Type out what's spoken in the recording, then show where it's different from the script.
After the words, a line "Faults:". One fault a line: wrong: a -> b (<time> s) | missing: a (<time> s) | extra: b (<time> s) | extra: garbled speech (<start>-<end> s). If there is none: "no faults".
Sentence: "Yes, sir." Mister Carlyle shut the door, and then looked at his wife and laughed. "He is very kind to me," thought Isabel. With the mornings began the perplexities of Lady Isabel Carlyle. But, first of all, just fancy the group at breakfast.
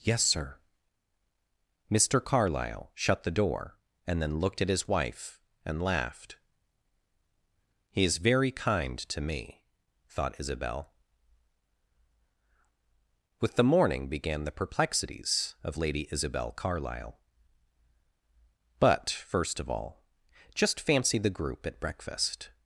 "Yes, sir." Mister Carlyle shut the door, and then looked at his wife and laughed. "He is very kind to me," thought Isabel. With the morning began the perplexities of Lady Isabel Carlyle. But, first of all, just fancy the group at breakfast.
Faults:
wrong: mornings -> morning (13.6 s)